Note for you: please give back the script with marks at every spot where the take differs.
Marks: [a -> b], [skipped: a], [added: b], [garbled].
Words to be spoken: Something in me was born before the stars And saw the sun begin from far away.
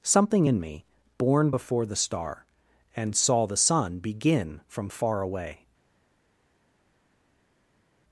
Something in me [skipped: was] born before the [stars -> star] And saw the sun begin from far away.